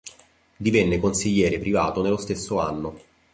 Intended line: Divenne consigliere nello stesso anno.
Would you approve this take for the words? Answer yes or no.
no